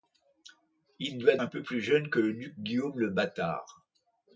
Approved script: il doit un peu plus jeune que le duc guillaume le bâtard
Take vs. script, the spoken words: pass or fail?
pass